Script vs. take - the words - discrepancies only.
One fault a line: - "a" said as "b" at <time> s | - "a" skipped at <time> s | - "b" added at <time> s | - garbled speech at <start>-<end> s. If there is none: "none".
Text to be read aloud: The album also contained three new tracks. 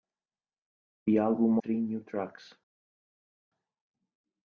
- "also contained" skipped at 1.6 s